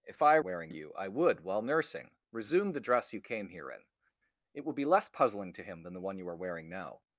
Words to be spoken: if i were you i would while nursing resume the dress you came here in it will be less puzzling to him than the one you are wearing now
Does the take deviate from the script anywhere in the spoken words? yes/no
yes